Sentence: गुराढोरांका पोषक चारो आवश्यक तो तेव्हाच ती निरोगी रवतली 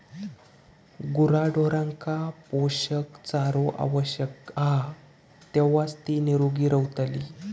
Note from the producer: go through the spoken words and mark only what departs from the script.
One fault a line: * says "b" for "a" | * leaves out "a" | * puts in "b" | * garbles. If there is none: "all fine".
* says "हा" for "तो"